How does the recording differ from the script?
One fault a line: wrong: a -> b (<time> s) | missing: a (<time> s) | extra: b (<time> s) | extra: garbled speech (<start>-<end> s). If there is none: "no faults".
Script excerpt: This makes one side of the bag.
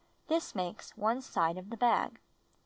no faults